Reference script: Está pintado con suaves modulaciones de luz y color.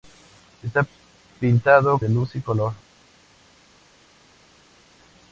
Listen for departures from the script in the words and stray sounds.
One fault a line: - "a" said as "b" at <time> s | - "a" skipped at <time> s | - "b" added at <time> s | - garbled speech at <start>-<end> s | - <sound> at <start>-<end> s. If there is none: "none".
- "con suaves modulaciones" skipped at 2.0 s